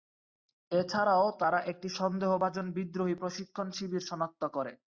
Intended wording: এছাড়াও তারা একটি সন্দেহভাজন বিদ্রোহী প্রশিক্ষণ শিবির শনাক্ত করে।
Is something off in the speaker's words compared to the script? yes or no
no